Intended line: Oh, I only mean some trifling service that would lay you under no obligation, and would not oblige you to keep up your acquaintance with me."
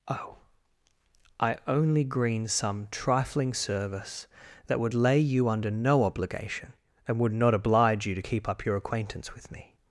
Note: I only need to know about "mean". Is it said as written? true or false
false